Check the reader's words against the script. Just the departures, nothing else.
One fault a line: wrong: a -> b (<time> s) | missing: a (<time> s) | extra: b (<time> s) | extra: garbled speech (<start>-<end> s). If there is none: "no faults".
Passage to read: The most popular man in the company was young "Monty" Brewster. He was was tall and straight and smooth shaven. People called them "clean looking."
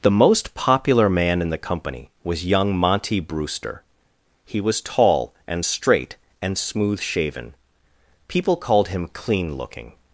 missing: was (4.8 s)
wrong: them -> him (8.9 s)